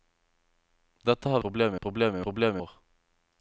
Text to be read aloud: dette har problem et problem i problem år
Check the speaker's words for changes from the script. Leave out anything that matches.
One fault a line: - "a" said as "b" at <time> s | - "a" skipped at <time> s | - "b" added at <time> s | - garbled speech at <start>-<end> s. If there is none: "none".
none